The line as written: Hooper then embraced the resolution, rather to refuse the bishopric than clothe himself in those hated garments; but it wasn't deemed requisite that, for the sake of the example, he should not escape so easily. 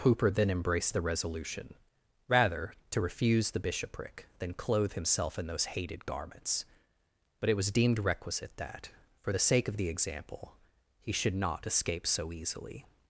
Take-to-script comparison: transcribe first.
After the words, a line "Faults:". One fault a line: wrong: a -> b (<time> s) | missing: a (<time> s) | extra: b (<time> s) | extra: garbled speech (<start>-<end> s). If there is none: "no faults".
Hooper then embraced the resolution, rather to refuse the bishopric than clothe himself in those hated garments; but it was deemed requisite that, for the sake of the example, he should not escape so easily.
Faults:
wrong: wasn't -> was (7.5 s)